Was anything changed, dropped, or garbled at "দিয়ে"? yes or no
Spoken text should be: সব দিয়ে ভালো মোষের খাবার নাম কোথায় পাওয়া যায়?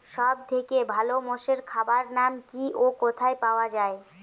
yes